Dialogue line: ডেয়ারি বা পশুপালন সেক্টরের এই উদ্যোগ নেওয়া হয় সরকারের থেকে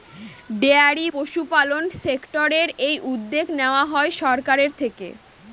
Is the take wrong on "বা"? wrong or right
wrong